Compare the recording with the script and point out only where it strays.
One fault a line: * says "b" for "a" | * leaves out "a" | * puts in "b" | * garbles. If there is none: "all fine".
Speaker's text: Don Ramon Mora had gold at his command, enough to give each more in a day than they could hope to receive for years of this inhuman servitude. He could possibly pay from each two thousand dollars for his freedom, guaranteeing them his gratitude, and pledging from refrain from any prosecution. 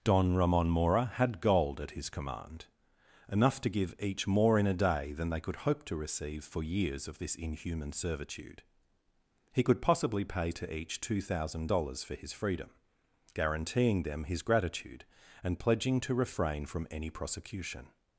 * says "to" for "from"
* says "to" for "from"